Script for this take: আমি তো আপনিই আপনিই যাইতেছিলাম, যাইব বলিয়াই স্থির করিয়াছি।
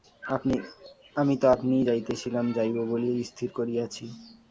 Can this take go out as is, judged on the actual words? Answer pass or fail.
fail